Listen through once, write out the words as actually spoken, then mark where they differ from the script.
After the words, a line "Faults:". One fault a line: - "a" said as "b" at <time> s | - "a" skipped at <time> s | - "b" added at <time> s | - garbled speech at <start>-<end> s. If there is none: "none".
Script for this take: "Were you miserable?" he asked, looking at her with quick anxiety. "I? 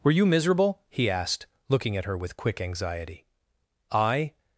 "Were you miserable?" he asked, looking at her with quick anxiety. "I?
Faults:
none